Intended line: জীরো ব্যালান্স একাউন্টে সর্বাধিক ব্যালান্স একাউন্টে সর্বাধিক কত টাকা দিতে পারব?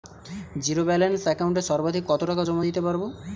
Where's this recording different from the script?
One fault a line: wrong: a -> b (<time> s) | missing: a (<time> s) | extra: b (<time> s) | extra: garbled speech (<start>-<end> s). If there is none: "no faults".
missing: ব্যালান্স একাউন্টে সর্বাধিক (2.0 s)
extra: জমা (2.5 s)